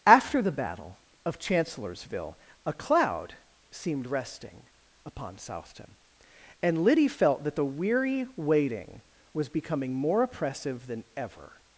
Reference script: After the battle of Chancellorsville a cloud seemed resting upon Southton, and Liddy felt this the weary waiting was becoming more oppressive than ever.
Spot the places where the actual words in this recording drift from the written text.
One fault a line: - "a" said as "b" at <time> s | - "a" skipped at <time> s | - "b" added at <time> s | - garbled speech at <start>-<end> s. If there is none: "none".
- "this" said as "that" at 7.4 s